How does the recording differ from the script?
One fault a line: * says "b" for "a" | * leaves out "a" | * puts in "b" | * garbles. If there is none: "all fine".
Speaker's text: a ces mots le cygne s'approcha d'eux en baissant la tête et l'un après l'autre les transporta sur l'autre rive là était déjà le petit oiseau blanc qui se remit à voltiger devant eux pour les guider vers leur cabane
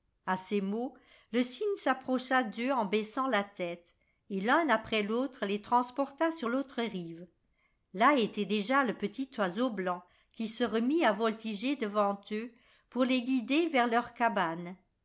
all fine